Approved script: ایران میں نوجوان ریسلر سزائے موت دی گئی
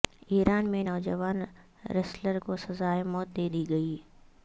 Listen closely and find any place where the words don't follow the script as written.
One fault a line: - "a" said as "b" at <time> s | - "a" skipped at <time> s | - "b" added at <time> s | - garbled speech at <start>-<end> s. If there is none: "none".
- "کو" added at 2.4 s
- "دے" added at 3.4 s